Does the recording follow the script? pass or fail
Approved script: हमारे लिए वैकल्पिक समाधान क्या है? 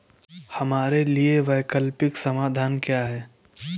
pass